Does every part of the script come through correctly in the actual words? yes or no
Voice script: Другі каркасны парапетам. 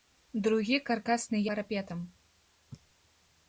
yes